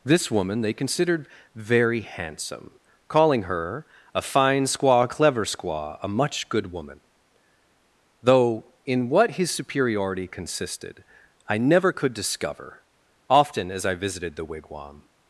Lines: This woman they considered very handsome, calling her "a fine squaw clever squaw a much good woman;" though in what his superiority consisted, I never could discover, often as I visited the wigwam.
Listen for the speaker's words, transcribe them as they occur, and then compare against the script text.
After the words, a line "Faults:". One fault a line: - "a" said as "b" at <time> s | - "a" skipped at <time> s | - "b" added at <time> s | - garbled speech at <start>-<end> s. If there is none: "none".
This woman they considered very handsome, calling her "a fine squaw clever squaw a much good woman;" though in what his superiority consisted, I never could discover, often as I visited the wigwam.
Faults:
none